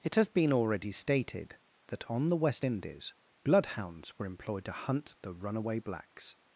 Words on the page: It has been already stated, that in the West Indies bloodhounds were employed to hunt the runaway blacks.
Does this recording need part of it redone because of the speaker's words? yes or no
yes